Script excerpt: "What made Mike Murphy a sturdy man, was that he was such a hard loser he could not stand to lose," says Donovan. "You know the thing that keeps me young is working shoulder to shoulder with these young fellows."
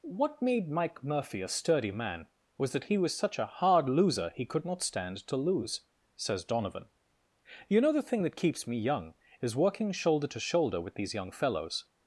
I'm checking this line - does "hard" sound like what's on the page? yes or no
yes